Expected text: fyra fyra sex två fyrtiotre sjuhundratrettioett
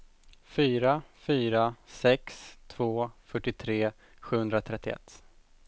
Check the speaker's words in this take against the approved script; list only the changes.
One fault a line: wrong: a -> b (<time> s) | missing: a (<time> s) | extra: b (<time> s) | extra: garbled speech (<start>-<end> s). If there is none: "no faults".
no faults